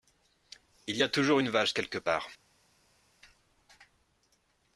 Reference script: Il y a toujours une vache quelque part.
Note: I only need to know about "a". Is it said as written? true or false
true